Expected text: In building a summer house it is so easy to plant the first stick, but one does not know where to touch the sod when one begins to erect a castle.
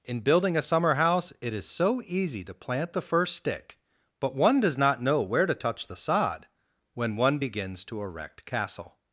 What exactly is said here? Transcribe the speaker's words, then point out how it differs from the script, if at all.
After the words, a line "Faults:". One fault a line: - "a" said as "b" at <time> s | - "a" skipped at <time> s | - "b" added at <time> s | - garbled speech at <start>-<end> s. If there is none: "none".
In building a summer house it is so easy to plant the first stick, but one does not know where to touch the sod when one begins to erect castle.
Faults:
- "a" skipped at 8.4 s